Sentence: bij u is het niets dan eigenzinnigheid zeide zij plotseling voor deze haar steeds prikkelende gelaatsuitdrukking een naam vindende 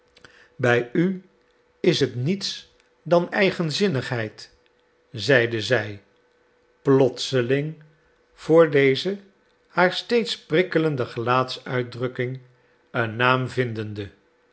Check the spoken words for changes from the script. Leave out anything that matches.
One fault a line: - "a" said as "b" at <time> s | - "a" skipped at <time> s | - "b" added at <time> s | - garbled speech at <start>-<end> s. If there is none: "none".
none